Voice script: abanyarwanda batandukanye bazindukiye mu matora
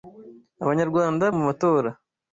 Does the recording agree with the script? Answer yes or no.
no